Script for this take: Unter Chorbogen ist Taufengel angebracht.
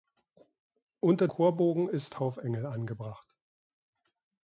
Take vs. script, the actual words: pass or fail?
pass